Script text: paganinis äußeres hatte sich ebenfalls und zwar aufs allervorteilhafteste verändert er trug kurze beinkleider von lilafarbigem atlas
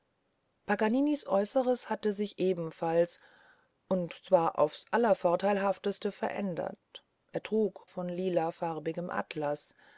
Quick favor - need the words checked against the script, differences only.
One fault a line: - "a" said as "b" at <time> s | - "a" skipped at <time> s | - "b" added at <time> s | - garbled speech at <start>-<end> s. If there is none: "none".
- "kurze beinkleider" skipped at 7.9 s